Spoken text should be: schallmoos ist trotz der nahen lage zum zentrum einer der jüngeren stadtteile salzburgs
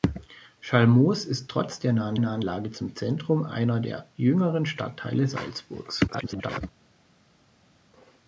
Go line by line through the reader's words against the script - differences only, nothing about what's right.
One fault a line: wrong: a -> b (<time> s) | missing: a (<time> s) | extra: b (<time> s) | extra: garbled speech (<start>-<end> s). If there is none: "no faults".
extra: nahen (2.2 s)
extra: garbled speech (6.1-6.6 s)